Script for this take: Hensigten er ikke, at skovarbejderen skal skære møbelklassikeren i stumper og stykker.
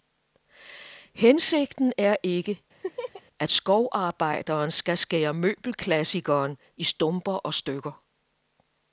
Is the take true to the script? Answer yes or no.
yes